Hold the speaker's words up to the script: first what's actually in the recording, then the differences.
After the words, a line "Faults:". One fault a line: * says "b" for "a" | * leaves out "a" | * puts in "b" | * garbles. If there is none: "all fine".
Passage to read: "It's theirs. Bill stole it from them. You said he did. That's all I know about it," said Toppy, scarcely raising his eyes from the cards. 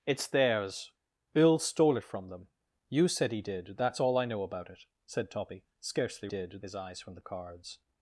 "It's theirs. Bill stole it from them. You said he did. That's all I know about it," said Toppy, scarcely did his eyes from the cards.
Faults:
* says "did" for "raising"